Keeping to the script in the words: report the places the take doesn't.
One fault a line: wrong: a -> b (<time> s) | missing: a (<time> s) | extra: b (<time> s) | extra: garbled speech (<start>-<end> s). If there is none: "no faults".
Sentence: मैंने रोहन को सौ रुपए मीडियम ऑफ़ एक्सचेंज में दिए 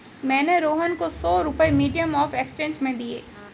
no faults